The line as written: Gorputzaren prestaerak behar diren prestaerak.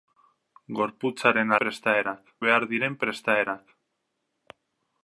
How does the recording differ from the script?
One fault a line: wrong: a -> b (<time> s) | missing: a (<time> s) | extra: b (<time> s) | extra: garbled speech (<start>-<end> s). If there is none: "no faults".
no faults